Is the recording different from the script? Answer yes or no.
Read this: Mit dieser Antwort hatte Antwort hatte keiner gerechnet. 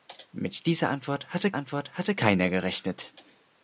no